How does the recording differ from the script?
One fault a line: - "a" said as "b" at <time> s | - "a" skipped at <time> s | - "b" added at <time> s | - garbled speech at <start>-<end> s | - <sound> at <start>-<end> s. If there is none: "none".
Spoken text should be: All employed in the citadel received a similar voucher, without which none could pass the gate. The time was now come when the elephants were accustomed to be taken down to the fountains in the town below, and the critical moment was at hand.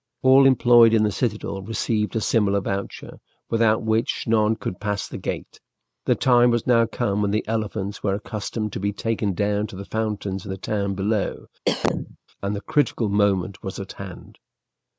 - cough at 11.7-12.2 s